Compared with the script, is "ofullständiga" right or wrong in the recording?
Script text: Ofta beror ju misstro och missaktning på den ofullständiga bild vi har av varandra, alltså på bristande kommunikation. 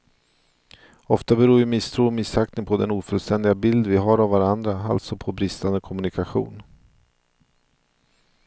right